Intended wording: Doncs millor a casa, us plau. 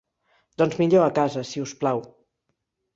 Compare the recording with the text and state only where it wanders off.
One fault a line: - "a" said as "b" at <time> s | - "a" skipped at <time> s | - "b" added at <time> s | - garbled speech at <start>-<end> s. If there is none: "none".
- "si" added at 1.5 s